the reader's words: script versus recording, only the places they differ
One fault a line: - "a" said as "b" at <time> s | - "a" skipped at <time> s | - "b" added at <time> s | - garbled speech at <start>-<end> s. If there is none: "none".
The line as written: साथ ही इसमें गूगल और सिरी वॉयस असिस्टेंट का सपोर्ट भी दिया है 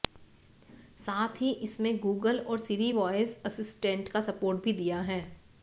none